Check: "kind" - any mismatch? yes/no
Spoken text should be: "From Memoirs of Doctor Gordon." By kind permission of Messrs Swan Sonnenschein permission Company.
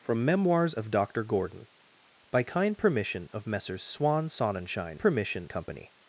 no